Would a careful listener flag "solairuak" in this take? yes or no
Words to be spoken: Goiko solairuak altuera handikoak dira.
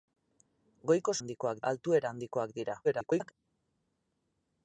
yes